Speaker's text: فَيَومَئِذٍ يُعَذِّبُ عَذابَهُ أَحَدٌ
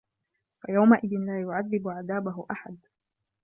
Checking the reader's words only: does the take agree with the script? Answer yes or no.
no